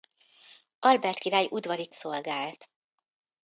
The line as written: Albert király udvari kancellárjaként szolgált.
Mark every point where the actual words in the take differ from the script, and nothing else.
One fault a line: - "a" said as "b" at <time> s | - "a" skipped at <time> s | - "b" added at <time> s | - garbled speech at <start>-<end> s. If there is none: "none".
- "kancellárjaként" skipped at 1.9 s